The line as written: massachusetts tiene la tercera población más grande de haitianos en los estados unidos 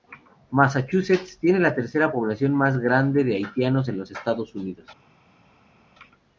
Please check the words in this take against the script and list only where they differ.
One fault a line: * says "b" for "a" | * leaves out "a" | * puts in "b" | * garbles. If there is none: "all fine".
all fine